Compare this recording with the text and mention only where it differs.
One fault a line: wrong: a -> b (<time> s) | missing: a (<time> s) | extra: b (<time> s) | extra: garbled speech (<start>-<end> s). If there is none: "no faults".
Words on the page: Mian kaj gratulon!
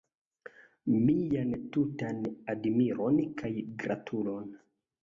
extra: tutan admiron (1.8 s)